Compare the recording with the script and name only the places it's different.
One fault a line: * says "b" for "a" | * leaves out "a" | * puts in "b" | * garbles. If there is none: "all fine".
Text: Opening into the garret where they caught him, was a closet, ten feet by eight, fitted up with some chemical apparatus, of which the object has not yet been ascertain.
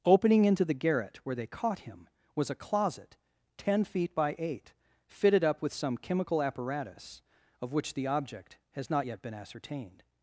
* says "ascertained" for "ascertain"